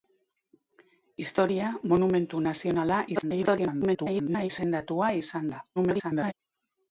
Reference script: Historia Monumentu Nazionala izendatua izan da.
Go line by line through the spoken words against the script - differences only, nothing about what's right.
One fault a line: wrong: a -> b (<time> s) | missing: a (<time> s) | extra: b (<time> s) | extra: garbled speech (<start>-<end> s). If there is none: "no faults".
extra: garbled speech (3.2-4.5 s)
extra: garbled speech (5.8-6.3 s)